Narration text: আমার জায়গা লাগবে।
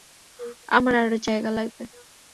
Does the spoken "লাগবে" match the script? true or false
true